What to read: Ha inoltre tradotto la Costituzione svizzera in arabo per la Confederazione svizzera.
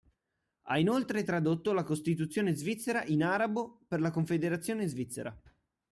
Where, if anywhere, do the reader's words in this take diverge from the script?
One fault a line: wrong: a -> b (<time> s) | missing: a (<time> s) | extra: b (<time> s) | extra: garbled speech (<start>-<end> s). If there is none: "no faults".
no faults